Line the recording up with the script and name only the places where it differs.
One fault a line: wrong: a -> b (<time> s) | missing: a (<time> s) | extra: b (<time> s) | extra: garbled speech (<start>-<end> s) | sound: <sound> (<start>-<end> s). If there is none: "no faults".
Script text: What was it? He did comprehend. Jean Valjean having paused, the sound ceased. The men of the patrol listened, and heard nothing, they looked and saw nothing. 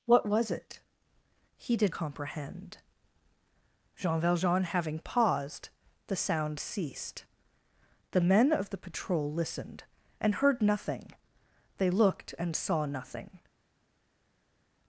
no faults